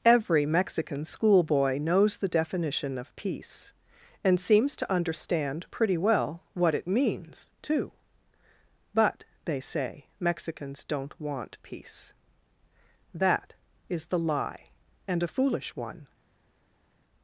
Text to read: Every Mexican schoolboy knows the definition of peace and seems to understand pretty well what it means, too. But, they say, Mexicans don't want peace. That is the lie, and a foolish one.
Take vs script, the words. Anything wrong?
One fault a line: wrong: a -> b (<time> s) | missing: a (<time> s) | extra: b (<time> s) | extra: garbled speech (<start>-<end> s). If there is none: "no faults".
no faults